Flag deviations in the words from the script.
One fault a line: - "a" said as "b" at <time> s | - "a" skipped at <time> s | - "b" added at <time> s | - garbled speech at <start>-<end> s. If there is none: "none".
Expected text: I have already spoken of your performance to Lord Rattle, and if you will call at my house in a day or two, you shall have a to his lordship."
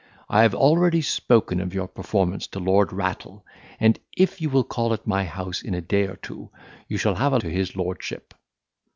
none